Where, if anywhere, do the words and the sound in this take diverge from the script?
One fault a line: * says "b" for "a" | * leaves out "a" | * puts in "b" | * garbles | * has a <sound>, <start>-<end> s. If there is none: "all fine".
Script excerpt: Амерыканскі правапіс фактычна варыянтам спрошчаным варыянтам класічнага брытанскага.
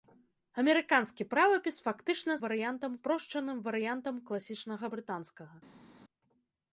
all fine